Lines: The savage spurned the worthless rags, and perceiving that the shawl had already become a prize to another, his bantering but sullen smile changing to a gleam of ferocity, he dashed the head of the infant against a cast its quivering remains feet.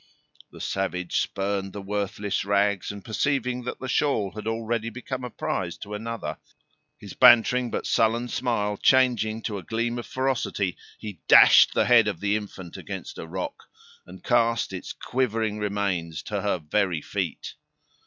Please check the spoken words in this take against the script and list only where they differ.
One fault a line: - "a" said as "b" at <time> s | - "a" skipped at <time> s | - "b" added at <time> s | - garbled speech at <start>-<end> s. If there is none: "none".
- "rock and" added at 13.3 s
- "to her very" added at 16.2 s